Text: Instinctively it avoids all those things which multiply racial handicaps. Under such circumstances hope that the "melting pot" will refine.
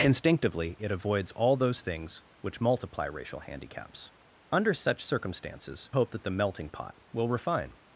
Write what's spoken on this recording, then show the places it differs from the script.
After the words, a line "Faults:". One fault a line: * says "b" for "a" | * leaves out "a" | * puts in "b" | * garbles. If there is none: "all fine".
Instinctively it avoids all those things which multiply racial handicaps. Under such circumstances hope that the "melting pot" will refine.
Faults:
all fine